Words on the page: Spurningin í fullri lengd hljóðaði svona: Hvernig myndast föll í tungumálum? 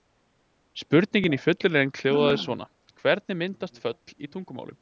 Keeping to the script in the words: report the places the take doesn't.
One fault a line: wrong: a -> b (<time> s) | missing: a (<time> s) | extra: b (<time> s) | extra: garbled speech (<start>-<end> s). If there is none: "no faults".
no faults